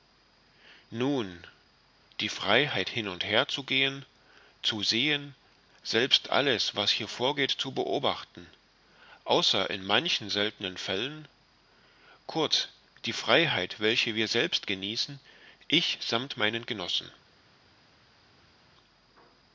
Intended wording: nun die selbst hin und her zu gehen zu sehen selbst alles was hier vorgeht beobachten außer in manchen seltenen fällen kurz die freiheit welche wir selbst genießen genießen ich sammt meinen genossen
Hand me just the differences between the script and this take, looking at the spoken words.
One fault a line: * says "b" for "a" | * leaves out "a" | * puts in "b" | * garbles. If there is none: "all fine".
* says "freiheit" for "selbst"
* puts in "zu"
* leaves out "genießen"